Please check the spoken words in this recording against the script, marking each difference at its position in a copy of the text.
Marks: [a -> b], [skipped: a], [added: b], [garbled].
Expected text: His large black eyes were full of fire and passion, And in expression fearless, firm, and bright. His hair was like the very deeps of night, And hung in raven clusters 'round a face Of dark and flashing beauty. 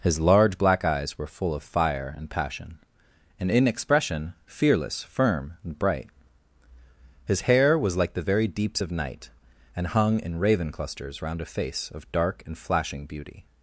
His large black eyes were full of fire and passion, And in expression fearless, firm, and bright. His hair was like the very deeps of night, And hung in raven clusters 'round a face Of dark and flashing beauty.